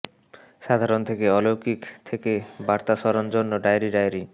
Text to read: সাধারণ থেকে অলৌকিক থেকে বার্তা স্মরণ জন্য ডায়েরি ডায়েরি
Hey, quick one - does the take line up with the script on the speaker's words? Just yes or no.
yes